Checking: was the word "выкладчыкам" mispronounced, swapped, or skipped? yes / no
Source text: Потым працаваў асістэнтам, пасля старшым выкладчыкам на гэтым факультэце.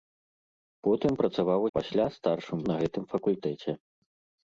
yes